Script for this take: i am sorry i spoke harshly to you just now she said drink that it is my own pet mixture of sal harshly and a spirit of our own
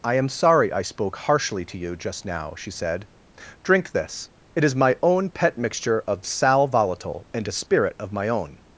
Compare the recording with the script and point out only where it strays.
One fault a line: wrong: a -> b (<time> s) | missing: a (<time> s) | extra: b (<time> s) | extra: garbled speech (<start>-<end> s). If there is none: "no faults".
wrong: that -> this (3.9 s)
wrong: harshly -> volatile (6.7 s)
wrong: our -> my (8.1 s)